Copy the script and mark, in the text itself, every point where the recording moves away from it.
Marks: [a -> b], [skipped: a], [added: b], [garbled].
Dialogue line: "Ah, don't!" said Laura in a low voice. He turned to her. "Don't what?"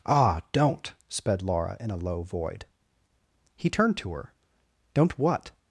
"Ah, don't!" [said -> sped] Laura in a low [voice. -> void] He turned to her. "Don't what?"